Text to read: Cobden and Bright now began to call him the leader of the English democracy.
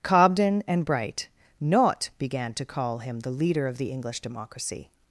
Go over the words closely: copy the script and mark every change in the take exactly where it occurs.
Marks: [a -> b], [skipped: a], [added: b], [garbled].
Cobden and Bright [now -> not] began to call him the leader of the English democracy.